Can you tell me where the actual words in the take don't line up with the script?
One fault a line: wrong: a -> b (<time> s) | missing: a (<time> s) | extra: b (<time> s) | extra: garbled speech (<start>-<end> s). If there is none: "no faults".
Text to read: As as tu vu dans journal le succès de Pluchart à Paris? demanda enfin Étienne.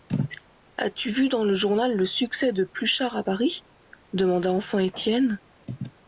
missing: as (0.9 s)
extra: le (1.4 s)